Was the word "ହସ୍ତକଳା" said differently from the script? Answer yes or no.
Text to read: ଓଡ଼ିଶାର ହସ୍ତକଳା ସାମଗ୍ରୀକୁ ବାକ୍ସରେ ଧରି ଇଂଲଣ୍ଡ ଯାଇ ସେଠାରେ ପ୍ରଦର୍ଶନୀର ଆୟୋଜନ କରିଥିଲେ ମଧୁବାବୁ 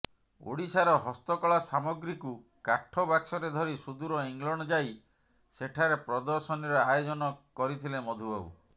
no